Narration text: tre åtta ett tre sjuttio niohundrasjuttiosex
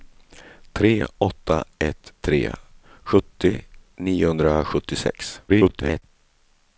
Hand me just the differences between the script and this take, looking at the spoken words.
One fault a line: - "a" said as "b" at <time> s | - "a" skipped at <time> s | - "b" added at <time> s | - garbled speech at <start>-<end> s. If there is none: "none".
- garbled speech at 5.5-6.0 s